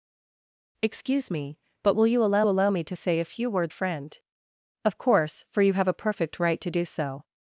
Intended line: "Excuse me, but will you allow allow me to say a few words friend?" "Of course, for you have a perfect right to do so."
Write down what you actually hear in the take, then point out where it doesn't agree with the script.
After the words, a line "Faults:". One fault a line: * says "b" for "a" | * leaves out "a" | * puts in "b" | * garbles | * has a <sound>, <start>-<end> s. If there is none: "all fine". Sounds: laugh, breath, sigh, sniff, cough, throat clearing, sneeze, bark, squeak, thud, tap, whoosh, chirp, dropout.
"Excuse me, but will you allow allow me to say a few words friend?" "Of course, for you have a perfect right to do so."
Faults:
all fine